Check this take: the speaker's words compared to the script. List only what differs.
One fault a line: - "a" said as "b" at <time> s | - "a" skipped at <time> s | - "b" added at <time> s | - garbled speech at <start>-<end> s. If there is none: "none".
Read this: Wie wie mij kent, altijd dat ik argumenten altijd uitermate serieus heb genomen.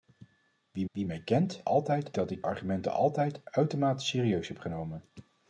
none